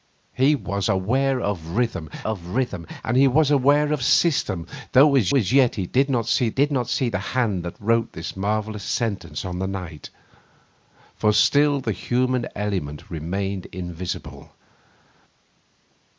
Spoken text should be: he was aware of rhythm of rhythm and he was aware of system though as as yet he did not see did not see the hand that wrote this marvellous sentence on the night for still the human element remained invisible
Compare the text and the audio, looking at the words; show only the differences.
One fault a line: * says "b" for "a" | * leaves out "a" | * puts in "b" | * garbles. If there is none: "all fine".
all fine